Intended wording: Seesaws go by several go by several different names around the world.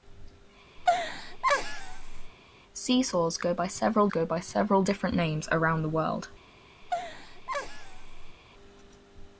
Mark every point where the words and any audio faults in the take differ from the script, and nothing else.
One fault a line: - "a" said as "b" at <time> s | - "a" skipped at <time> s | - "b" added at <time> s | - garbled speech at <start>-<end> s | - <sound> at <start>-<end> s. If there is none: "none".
- laugh at 0.8-2.3 s
- laugh at 6.8-8.4 s